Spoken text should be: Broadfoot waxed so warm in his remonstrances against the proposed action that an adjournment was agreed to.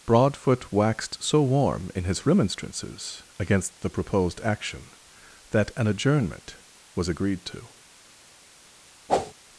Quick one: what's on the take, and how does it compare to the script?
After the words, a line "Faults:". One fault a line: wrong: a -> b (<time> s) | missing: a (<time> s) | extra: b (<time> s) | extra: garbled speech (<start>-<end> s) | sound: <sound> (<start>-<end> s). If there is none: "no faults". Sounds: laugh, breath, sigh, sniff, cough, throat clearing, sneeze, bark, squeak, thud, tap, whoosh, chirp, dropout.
Broadfoot waxed so warm in his remonstrances against the proposed action that an adjournment was agreed to.
Faults:
sound: whoosh (9.1-9.3 s)